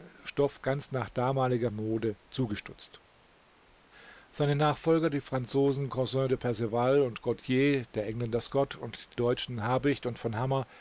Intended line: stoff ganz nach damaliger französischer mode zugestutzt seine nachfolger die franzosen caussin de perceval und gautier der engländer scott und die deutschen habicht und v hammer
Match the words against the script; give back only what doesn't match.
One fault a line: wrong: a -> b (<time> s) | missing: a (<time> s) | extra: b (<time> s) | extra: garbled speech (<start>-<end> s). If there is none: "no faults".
missing: französischer (1.7 s)
missing: die (9.1 s)